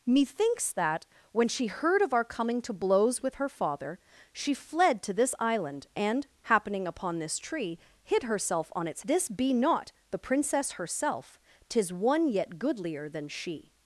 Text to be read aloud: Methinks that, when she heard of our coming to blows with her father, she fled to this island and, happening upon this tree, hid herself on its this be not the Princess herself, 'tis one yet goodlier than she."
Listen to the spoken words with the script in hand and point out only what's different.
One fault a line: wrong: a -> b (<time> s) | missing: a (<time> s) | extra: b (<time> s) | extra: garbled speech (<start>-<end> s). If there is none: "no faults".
no faults